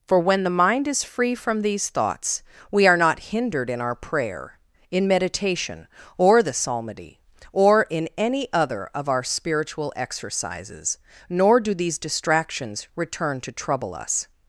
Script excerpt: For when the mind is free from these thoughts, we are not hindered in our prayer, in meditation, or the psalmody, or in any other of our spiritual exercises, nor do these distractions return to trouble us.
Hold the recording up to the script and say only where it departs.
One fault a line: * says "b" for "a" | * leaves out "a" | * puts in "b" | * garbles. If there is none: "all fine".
all fine